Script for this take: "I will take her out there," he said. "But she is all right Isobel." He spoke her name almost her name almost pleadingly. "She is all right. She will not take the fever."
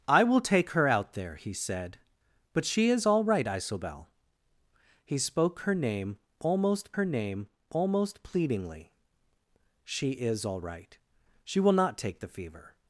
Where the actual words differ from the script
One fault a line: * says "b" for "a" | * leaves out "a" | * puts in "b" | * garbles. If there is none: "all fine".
all fine